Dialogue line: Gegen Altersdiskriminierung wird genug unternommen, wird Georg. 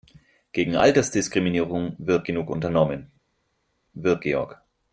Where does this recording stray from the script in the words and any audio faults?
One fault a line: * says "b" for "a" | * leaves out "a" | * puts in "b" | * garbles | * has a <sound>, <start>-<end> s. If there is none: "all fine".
all fine